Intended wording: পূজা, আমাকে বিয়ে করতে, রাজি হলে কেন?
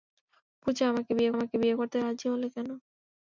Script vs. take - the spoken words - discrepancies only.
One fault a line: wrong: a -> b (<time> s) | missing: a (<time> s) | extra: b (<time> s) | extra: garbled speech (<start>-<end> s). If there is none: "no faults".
extra: আমাকে বিয়ে (1.3 s)